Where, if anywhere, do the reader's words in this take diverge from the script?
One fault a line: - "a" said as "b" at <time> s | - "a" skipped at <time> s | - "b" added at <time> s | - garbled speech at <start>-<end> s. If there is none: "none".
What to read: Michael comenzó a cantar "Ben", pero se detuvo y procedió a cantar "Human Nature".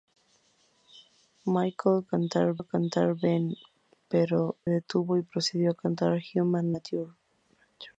- "comenzó" said as "cantar" at 2.0 s
- "se" skipped at 4.6 s